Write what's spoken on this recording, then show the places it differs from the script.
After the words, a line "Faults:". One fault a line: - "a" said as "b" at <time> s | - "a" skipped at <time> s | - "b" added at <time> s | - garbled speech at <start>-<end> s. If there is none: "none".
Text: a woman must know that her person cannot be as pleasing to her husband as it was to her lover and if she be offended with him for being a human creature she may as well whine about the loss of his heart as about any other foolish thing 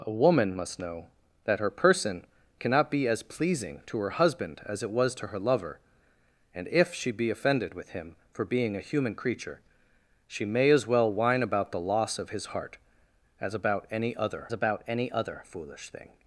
a woman must know that her person cannot be as pleasing to her husband as it was to her lover and if she be offended with him for being a human creature she may as well whine about the loss of his heart as about any other about any other foolish thing
Faults:
- "about any other" added at 14.5 s